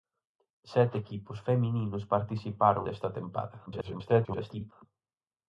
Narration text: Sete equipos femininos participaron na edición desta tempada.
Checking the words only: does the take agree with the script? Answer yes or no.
no